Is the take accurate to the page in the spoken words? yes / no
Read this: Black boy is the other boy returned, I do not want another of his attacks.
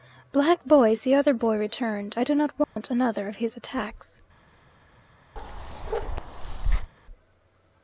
yes